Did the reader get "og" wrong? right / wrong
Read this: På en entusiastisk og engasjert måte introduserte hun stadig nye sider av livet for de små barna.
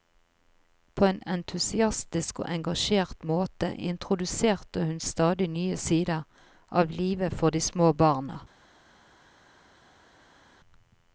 right